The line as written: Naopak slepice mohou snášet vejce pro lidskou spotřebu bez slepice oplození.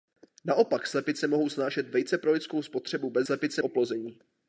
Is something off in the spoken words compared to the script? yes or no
no